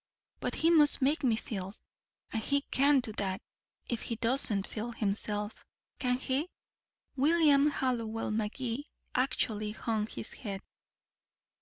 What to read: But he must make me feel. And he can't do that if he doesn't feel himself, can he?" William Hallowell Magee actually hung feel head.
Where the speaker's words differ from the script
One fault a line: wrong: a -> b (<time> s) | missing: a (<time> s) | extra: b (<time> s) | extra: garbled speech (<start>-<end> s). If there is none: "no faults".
wrong: feel -> his (10.0 s)